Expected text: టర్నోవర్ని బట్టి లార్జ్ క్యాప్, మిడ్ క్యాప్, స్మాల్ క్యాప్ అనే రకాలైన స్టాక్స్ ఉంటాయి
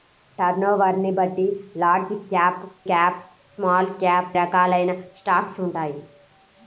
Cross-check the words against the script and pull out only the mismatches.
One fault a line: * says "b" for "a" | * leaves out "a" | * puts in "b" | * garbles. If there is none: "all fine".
* leaves out "మిడ్"
* leaves out "అనే"